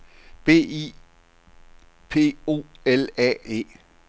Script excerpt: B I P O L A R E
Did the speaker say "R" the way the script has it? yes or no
no